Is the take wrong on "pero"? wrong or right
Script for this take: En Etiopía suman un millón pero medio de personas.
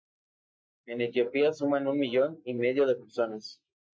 wrong